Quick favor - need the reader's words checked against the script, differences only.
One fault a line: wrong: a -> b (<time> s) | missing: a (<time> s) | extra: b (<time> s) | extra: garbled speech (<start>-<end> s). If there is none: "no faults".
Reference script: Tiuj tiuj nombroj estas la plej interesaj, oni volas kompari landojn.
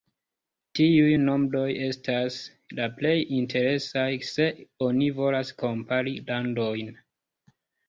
missing: tiuj (1.1 s)
extra: se (4.3 s)